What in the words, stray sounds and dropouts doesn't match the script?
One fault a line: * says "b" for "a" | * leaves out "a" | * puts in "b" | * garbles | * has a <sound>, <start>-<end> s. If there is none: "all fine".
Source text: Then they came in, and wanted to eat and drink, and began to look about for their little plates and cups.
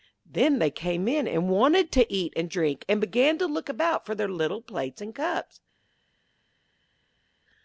all fine